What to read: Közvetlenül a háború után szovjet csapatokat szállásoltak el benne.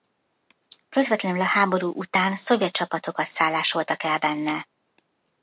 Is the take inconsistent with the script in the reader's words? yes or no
no